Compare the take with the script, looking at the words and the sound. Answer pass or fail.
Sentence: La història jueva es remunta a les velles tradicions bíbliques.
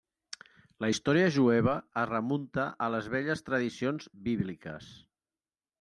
pass